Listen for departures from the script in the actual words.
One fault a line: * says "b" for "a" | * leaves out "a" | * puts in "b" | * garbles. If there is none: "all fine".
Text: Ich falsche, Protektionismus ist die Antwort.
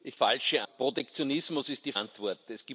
all fine